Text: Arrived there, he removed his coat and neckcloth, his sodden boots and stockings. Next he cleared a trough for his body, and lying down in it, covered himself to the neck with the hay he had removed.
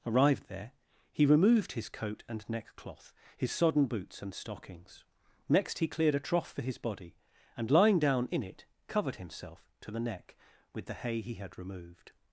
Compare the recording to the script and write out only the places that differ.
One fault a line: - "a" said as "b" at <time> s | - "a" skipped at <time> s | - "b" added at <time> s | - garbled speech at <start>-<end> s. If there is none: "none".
none